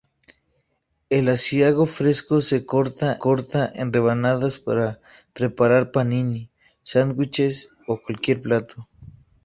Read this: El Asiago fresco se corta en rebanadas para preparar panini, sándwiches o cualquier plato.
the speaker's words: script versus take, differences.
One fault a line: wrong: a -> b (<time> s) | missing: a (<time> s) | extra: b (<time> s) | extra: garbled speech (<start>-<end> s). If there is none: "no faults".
extra: corta (3.2 s)